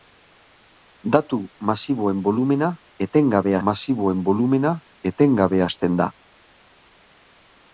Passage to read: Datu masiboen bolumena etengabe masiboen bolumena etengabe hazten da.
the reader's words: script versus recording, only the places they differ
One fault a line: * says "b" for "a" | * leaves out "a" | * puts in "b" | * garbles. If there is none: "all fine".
all fine